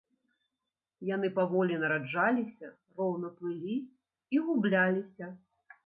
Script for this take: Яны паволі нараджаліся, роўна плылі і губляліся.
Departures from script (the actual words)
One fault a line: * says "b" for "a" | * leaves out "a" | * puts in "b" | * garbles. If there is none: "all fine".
all fine